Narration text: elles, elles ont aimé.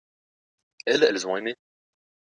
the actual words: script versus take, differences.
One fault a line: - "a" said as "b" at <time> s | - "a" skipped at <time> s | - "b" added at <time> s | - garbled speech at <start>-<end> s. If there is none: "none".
none